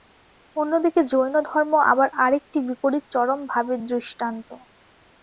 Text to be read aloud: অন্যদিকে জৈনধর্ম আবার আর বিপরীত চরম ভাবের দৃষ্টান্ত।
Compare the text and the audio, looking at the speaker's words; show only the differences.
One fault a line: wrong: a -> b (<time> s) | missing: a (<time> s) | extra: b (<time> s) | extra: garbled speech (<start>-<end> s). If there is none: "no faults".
extra: একটি (2.4 s)